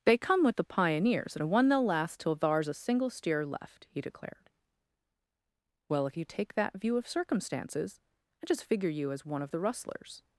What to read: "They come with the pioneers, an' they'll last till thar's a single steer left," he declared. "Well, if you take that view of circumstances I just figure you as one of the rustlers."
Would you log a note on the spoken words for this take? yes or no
yes